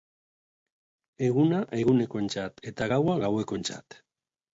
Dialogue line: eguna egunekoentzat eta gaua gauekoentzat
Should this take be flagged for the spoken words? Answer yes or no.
no